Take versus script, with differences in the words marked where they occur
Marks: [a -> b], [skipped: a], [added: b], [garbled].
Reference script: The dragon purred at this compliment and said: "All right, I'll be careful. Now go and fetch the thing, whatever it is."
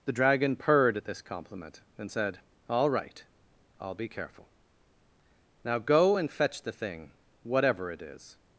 The dragon purred at this compliment and said: "All right, I'll be careful. Now go and fetch the thing, whatever it is."